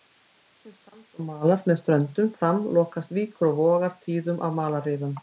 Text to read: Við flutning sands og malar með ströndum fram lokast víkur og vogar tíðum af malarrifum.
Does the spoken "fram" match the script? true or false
true